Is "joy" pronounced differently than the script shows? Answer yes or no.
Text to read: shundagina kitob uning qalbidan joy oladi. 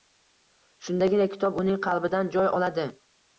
no